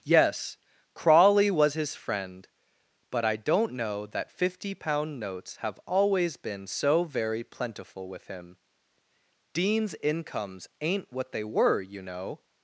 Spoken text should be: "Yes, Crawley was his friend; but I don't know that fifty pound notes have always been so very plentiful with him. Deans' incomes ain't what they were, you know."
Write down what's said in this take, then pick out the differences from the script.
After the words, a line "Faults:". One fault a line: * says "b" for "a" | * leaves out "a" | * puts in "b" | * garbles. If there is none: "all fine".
"Yes, Crawley was his friend; but I don't know that fifty pound notes have always been so very plentiful with him. Deans' incomes ain't what they were, you know."
Faults:
all fine